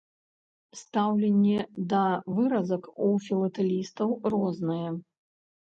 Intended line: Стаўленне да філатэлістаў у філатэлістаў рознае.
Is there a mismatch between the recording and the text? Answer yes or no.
yes